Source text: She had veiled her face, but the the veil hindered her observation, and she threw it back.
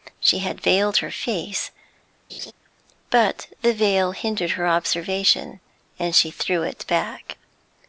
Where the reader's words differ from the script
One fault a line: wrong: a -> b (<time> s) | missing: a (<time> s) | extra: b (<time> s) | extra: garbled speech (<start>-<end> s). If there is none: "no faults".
missing: the (3.7 s)